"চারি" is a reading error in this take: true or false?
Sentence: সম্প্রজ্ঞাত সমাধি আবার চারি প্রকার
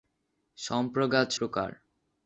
true